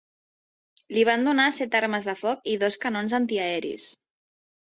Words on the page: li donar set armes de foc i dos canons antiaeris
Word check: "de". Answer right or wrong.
right